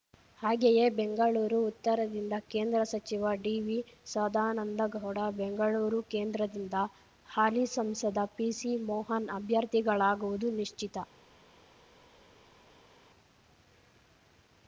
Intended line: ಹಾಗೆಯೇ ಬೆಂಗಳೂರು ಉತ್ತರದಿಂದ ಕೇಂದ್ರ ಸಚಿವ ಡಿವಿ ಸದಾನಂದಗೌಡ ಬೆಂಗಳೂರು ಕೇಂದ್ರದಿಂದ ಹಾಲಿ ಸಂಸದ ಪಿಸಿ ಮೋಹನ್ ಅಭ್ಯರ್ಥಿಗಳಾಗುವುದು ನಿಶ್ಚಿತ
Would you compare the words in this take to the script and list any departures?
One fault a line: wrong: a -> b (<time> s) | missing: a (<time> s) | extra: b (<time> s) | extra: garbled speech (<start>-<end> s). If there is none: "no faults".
no faults